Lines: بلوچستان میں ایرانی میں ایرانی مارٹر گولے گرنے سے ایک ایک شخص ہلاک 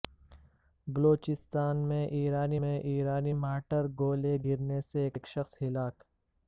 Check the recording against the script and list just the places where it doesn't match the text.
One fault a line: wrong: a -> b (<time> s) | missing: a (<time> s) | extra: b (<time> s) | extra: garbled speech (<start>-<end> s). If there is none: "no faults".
no faults